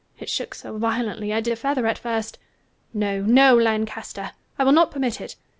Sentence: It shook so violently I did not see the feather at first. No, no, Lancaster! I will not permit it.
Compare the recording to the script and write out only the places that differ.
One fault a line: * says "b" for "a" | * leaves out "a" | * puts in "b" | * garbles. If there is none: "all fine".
* leaves out "not see"